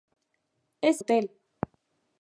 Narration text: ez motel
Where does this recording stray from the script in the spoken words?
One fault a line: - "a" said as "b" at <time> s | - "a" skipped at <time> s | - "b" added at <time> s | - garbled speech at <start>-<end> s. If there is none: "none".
none